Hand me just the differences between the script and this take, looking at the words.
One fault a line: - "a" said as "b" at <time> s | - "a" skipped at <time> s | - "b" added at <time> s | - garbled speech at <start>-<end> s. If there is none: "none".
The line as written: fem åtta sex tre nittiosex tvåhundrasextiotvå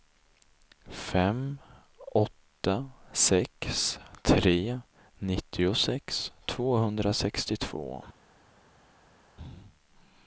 none